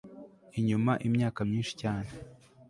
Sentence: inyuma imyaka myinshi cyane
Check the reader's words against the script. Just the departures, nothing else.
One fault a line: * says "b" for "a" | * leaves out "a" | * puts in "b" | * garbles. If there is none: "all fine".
all fine